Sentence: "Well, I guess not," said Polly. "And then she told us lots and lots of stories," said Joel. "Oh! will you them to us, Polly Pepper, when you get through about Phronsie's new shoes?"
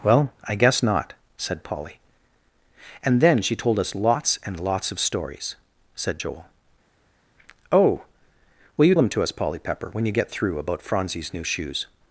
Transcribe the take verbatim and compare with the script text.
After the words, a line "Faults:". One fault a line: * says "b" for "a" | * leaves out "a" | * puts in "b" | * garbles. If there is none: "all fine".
"Well, I guess not," said Polly. "And then she told us lots and lots of stories," said Joel. "Oh! will you them to us, Polly Pepper, when you get through about Phronsie's new shoes?"
Faults:
all fine